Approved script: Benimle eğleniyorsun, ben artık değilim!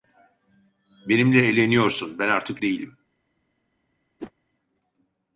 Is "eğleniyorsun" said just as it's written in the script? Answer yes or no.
yes